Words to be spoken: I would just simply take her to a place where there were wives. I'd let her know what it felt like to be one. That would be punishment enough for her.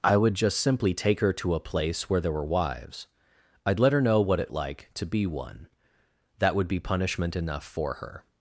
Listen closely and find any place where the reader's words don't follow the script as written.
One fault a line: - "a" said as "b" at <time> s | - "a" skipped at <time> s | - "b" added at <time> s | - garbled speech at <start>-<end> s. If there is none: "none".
- "felt" skipped at 4.5 s